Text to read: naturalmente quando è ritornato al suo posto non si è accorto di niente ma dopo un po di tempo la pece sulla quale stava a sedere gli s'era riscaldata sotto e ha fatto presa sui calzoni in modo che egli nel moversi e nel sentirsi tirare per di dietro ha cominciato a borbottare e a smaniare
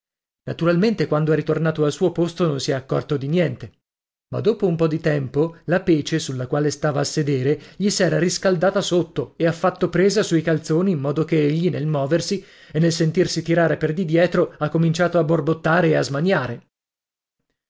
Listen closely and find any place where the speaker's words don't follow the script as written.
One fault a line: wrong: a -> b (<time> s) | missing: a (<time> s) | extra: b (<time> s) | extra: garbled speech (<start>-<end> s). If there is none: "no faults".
no faults